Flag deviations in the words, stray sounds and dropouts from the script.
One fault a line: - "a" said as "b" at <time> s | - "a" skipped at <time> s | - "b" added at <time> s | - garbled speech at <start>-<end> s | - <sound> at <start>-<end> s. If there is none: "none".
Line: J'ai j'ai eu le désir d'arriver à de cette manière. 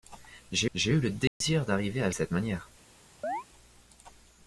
- dropout at 1.3-1.4 s
- chirp at 3.2-3.4 s